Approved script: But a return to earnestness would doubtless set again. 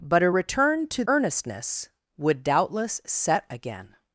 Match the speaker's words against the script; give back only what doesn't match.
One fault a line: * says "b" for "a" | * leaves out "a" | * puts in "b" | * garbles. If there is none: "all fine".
all fine